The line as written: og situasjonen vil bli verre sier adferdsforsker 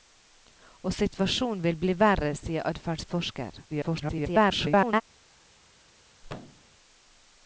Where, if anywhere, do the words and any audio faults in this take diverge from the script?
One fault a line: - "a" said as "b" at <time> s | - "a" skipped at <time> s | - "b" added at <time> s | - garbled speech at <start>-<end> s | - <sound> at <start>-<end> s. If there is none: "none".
- garbled speech at 3.7-5.0 s
- thud at 6.2-6.7 s